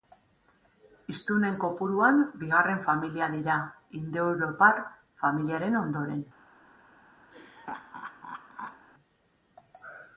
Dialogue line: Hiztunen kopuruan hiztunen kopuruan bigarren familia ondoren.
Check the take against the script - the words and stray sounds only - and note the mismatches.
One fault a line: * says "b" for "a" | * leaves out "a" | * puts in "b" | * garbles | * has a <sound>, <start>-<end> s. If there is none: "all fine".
* says "bigarren familia dira indoeuropar familiaren" for "hiztunen kopuruan bigarren familia"
* has a laugh, 7.3-8.9 s